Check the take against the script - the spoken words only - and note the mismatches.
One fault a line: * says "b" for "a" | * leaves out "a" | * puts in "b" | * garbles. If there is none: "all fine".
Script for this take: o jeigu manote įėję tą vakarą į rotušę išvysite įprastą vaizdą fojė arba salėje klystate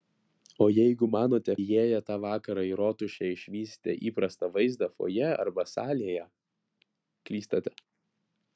all fine